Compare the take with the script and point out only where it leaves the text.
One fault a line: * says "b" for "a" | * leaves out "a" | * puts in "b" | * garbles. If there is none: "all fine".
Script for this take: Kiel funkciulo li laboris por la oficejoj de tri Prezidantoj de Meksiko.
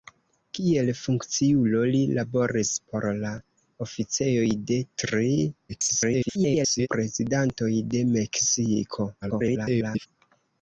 * garbles
* garbles